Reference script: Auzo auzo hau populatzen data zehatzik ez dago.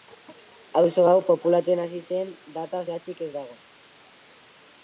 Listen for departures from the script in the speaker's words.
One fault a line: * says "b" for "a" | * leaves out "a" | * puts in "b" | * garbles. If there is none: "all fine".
* leaves out "auzo"
* puts in "hasi zen"